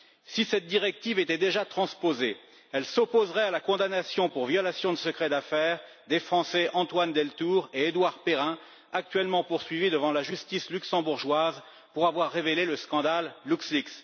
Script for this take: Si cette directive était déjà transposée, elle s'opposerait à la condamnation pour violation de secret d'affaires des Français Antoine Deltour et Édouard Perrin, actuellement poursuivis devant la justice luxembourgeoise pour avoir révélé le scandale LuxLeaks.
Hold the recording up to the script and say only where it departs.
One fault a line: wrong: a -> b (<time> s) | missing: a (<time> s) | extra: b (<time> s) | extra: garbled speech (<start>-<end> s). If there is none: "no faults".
no faults